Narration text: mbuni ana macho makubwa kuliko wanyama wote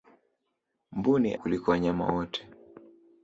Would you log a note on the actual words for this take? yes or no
yes